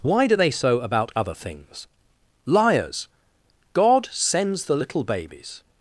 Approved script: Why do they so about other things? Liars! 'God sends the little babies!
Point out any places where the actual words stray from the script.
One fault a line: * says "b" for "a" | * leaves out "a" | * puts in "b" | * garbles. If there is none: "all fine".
all fine